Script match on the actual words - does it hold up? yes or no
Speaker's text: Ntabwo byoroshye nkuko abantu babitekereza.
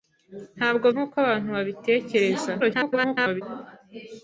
no